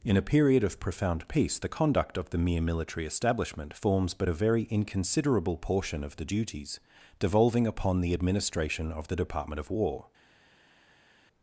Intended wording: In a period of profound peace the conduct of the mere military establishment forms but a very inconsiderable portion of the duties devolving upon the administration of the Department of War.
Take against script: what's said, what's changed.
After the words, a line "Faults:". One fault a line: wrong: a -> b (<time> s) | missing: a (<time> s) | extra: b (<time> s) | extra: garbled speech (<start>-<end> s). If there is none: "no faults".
In a period of profound peace the conduct of the mere military establishment forms but a very inconsiderable portion of the duties devolving upon the administration of the Department of War.
Faults:
no faults